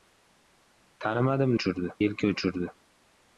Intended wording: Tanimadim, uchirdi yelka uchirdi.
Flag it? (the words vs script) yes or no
no